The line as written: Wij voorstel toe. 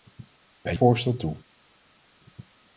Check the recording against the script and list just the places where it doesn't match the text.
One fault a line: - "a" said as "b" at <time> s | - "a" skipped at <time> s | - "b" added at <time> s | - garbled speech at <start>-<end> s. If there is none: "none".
none